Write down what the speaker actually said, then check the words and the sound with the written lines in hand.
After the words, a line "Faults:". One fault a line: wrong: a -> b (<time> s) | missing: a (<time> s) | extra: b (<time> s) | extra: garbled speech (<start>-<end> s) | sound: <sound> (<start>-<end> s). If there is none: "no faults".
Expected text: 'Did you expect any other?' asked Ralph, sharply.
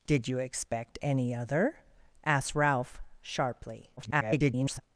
'Did you expect any other?' asked Ralph, sharply. [garbled]
Faults:
extra: garbled speech (4.0-4.8 s)